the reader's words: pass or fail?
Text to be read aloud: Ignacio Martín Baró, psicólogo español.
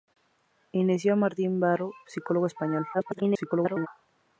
fail